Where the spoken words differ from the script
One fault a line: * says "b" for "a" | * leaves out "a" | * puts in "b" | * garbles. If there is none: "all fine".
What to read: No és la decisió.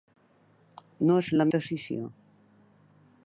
all fine